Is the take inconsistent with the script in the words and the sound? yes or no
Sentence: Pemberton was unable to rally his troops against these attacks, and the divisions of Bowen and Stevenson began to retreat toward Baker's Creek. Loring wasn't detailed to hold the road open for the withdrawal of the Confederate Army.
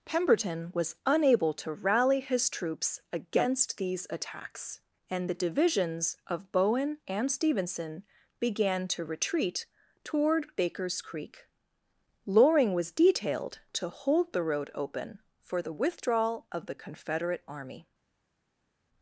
yes